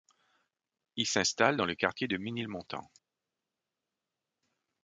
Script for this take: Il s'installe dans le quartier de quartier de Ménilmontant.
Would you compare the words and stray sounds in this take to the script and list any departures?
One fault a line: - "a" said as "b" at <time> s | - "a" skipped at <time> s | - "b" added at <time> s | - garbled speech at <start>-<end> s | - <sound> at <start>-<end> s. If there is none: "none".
- "quartier de" skipped at 2.2 s